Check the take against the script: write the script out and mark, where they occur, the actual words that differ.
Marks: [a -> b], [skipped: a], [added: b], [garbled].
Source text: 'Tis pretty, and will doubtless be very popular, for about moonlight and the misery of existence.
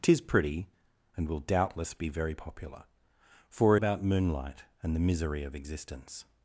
'Tis pretty, and will doubtless be very popular, for about moonlight and the misery of existence.